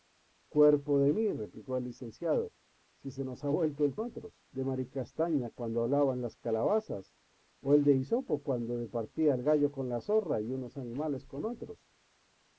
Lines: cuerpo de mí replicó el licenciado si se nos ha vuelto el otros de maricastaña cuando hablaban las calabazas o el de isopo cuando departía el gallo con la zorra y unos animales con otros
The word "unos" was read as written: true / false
true